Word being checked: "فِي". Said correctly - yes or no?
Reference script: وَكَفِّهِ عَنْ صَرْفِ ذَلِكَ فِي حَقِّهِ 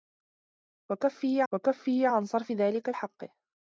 no